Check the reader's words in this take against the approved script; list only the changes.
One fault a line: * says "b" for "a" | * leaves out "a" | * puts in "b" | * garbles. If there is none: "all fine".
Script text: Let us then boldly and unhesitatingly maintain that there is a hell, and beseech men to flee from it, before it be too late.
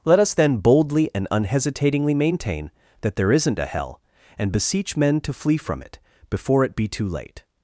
* says "isn't" for "is"